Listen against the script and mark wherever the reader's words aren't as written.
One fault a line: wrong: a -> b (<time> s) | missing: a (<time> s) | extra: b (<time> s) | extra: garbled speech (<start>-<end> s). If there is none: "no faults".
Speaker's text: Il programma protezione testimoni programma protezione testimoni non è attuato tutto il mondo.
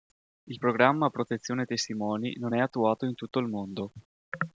missing: programma protezione testimoni (2.3 s)
extra: in (3.1 s)